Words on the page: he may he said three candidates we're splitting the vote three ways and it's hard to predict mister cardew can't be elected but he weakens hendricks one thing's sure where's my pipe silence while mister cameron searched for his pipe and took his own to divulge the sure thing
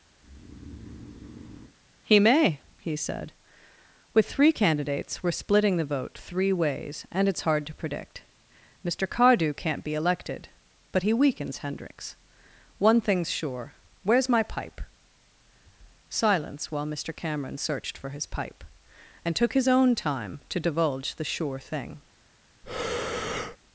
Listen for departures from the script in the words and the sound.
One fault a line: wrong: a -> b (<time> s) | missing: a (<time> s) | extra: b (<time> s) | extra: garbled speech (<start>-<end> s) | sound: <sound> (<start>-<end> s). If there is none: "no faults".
sound: breath (0.2-1.7 s)
extra: with (4.1 s)
extra: time (19.9 s)
sound: breath (22.6-23.6 s)